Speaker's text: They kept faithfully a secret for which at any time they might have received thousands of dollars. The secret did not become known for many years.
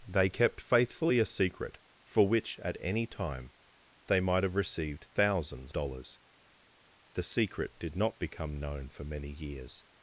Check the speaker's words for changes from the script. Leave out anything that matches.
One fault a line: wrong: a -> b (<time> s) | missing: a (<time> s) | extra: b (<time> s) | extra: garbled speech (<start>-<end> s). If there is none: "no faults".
missing: of (5.7 s)